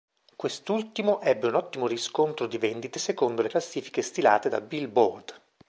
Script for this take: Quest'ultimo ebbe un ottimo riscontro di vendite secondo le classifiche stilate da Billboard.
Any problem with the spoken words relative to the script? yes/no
no